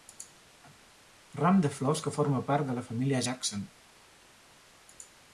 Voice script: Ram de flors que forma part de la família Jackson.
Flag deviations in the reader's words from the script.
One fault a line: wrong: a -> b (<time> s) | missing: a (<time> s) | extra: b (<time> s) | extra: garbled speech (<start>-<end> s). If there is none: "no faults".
no faults